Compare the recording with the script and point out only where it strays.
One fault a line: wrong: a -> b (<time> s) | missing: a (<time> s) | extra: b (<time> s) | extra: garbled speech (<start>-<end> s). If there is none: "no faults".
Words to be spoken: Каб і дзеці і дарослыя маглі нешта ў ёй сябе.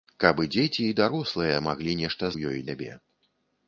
no faults